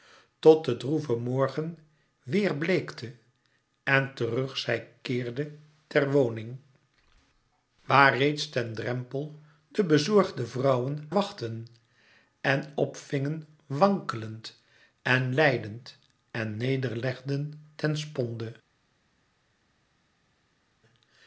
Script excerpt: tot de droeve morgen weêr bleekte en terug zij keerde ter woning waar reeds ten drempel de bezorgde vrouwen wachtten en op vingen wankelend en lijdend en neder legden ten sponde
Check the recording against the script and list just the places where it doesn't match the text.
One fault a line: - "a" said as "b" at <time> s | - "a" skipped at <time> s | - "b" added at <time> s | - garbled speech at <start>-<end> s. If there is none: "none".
none